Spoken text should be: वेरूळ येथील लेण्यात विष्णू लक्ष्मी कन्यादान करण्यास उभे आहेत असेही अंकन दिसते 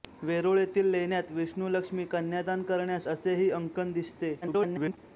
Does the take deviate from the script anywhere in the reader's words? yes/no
yes